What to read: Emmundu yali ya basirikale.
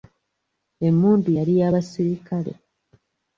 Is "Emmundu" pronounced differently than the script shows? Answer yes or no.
no